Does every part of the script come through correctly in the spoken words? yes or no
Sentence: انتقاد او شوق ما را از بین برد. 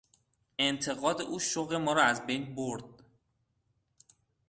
yes